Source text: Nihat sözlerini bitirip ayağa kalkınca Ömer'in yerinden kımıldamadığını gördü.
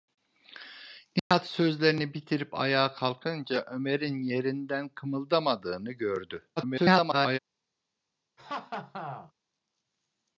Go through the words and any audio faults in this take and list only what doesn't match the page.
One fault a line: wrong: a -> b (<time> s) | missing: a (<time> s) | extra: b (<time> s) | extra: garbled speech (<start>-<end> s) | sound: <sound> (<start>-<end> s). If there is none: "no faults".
sound: dropout (1.2-1.3 s)
extra: garbled speech (6.6-7.4 s)
sound: laugh (8.4-9.3 s)